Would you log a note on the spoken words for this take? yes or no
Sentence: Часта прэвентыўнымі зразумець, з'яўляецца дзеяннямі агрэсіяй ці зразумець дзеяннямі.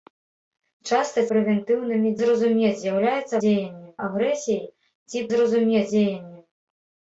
no